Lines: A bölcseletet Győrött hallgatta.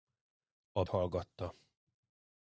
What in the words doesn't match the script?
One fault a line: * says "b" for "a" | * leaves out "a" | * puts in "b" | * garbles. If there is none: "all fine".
* leaves out "bölcseletet Győrött"